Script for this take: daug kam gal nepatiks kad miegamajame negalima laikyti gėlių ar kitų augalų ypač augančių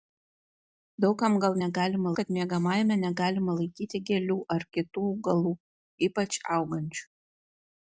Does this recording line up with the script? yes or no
no